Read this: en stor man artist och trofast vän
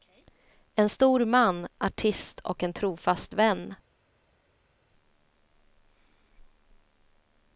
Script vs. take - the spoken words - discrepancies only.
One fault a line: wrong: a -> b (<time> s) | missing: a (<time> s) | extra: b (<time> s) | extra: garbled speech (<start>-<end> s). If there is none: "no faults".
extra: en (2.6 s)